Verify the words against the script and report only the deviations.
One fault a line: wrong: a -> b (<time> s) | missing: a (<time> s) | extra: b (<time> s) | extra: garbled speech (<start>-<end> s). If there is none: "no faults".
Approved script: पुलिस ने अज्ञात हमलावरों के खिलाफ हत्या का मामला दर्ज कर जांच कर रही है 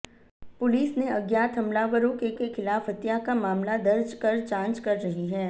extra: के (2.4 s)